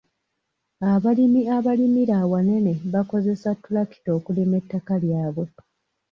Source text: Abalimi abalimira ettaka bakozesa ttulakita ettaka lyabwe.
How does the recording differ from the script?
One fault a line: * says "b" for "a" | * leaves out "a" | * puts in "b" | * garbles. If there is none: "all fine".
* says "awanene" for "ettaka"
* puts in "okulima"